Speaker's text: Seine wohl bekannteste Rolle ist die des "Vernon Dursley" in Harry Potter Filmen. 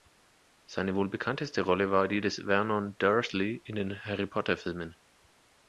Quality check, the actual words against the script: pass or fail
fail